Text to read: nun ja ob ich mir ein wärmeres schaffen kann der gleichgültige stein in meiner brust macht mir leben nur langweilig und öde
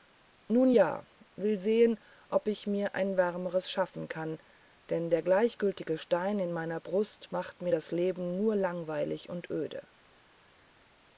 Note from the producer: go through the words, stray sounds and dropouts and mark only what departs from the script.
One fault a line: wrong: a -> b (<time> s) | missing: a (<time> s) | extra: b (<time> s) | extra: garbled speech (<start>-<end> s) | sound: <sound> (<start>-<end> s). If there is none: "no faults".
extra: will sehen (1.3 s)
extra: denn (4.9 s)
extra: das (7.7 s)